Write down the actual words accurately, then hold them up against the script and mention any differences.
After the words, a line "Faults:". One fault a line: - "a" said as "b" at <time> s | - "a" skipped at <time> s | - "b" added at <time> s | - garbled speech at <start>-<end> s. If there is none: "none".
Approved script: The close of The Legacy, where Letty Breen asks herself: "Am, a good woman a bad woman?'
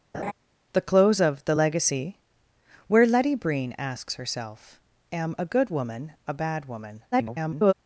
The close of The Legacy, where Letty Breen asks herself: "Am, a good woman a bad woman?' [garbled]
Faults:
- garbled speech at 7.1-7.7 s